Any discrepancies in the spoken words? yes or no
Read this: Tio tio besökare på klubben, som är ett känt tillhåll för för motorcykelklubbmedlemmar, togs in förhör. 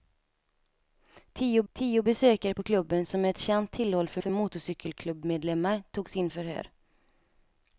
no